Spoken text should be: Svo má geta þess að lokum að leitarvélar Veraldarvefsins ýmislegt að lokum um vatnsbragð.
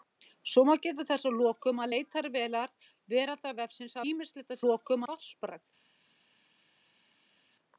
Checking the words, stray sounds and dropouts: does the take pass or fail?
pass